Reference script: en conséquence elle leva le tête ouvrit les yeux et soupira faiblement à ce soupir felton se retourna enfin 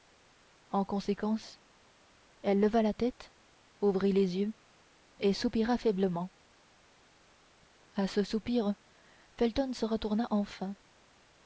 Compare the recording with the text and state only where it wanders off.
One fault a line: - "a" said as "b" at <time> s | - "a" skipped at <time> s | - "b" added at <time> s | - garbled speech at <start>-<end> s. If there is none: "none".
- "le" said as "la" at 2.8 s